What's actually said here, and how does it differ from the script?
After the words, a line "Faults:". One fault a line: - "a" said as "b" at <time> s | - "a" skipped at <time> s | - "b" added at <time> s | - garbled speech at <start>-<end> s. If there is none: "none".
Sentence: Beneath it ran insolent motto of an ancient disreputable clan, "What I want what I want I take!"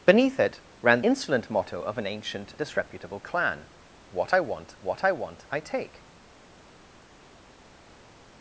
Beneath it ran insolent motto of an ancient disreputable clan, "What I want what I want I take!"
Faults:
none